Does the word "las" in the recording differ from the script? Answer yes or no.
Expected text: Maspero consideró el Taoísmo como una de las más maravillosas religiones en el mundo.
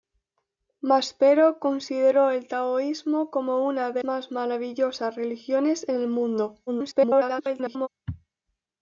yes